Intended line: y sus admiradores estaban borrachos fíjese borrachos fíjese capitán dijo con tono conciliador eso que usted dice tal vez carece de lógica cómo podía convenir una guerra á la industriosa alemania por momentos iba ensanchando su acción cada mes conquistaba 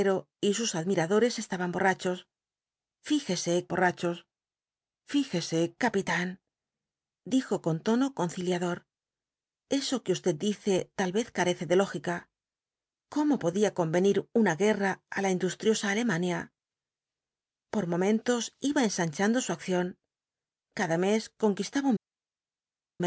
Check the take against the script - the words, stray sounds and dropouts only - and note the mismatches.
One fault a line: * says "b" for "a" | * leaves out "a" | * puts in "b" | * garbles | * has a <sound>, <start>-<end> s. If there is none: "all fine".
all fine